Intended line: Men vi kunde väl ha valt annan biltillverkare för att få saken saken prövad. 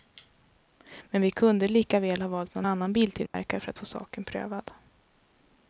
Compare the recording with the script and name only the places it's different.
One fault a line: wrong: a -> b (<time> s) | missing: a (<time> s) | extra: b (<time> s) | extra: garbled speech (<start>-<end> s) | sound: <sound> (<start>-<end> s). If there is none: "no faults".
extra: lika (1.7 s)
extra: någon (2.5 s)
sound: dropout (3.3-3.3 s)
missing: saken (4.2 s)